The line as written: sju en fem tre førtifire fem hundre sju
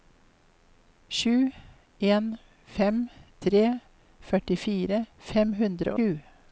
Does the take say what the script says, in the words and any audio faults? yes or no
yes